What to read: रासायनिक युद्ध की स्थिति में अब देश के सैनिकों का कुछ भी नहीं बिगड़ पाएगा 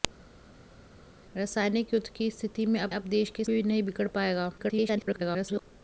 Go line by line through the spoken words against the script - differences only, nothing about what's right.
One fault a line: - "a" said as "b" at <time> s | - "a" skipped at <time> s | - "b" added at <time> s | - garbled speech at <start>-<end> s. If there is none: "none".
- "अब" added at 2.9 s
- "सैनिकों का कुछ" skipped at 3.4 s
- garbled speech at 4.6-5.6 s